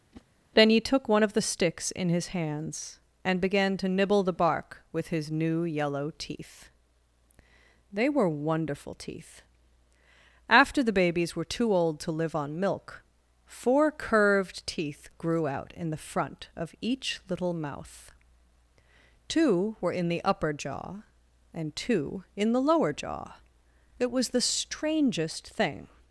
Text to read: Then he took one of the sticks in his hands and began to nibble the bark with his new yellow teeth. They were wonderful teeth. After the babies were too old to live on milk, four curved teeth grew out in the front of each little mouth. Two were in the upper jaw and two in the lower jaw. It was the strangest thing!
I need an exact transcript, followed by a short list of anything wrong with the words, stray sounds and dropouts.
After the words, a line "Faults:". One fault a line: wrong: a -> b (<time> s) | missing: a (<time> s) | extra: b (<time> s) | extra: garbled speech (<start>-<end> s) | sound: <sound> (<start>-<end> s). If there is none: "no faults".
Then he took one of the sticks in his hands and began to nibble the bark with his new yellow teeth. They were wonderful teeth. After the babies were too old to live on milk, four curved teeth grew out in the front of each little mouth. Two were in the upper jaw and two in the lower jaw. It was the strangest thing!
Faults:
sound: whoosh (0.1-0.3 s)